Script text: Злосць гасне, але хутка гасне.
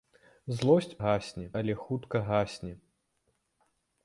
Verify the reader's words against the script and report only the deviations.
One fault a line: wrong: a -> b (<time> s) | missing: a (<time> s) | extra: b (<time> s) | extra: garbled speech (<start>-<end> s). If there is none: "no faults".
no faults